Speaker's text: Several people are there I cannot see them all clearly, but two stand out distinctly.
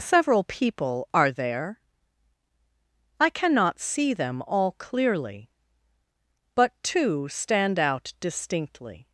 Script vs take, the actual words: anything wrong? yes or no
no